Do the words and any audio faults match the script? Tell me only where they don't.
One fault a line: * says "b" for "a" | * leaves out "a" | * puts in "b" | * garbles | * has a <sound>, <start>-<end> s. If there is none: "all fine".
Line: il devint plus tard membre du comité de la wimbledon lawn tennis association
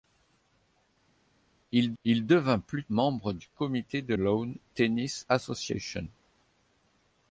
* puts in "il"
* leaves out "tard"
* leaves out "la wimbledon"